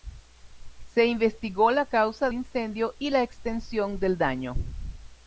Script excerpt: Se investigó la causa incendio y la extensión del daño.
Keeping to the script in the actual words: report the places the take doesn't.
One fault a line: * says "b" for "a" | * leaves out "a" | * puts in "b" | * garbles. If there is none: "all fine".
all fine